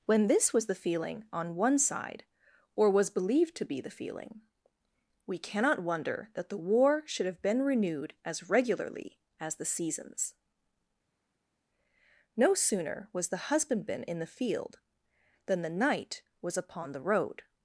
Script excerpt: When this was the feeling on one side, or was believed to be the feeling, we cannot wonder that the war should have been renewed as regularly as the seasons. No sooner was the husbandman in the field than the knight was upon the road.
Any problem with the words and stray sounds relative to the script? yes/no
no